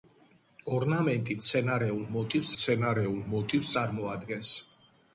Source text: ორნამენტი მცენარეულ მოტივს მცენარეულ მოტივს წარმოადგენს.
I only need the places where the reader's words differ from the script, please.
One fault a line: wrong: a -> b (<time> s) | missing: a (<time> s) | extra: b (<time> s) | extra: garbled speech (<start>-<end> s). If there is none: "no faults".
no faults